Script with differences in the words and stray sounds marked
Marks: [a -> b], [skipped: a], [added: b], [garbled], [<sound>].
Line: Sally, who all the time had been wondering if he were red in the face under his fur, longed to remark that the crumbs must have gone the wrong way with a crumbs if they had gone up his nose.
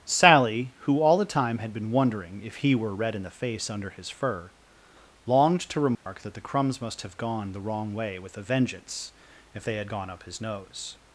Sally, who all the time had been wondering if he were red in the face under his fur, longed to remark [dropout] that the crumbs must have gone the wrong way with a [crumbs -> vengeance] if they had gone up his nose.